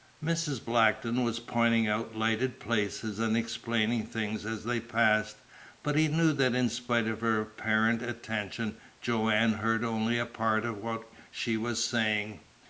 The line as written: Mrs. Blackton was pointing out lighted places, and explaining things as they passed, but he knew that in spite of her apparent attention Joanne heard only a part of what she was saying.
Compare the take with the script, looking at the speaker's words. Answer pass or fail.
pass